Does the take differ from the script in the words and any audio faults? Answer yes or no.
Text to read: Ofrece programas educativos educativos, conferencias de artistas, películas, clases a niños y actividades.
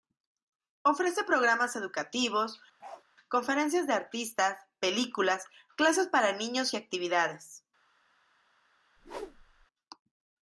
yes